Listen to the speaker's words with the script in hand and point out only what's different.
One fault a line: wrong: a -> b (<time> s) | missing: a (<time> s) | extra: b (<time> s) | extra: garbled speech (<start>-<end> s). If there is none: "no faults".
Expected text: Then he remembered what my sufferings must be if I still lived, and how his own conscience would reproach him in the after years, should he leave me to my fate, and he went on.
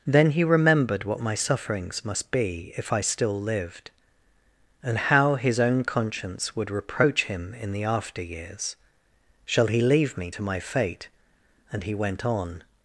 wrong: should -> shall (9.4 s)